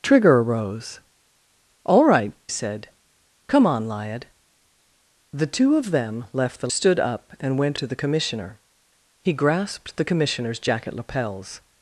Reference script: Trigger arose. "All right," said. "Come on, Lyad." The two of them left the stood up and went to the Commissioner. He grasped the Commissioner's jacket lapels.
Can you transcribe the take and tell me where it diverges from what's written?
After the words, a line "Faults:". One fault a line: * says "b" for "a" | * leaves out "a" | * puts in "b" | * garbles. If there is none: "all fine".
Trigger arose. "All right," said. "Come on, Lyad." The two of them left the stood up and went to the Commissioner. He grasped the Commissioner's jacket lapels.
Faults:
all fine